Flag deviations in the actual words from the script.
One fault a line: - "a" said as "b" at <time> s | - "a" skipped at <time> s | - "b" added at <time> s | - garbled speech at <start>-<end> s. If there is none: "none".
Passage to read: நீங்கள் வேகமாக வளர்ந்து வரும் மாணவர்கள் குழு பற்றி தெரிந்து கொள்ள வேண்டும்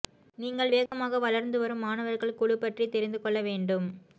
none